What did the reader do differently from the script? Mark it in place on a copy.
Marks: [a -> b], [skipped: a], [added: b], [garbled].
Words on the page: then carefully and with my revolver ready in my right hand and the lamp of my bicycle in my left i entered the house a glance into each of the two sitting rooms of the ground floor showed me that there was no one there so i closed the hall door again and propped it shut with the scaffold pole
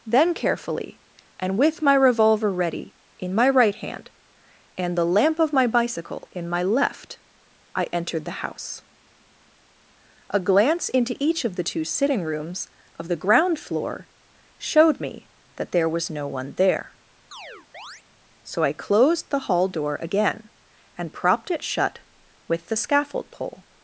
then carefully and with my revolver ready in my right hand and the lamp of my bicycle in my left i entered the house a glance into each of the two sitting rooms of the ground floor showed me that there was no one there so i closed the hall door again and propped it shut with the scaffold pole